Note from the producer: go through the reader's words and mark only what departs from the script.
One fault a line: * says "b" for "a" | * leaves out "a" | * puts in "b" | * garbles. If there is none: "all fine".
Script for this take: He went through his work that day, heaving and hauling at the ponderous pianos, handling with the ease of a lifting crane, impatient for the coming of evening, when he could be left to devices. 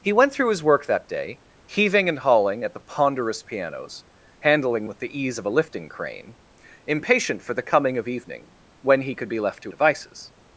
all fine